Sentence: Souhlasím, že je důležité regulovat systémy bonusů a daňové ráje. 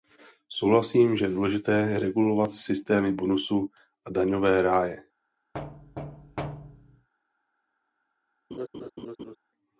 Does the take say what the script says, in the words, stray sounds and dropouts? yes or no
no